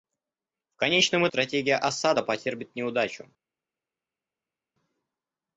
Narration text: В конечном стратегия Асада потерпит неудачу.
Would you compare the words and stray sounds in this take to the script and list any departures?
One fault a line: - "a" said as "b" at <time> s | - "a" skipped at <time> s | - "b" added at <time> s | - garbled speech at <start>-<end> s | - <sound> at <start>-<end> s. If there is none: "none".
none